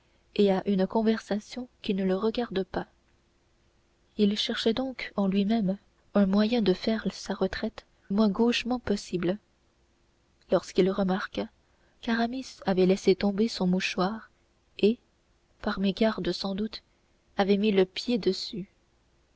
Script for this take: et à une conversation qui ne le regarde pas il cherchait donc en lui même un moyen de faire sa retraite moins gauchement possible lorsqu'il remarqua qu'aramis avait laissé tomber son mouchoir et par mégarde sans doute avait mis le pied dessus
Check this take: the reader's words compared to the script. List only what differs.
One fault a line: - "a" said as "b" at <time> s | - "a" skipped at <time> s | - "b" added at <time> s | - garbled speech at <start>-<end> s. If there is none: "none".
none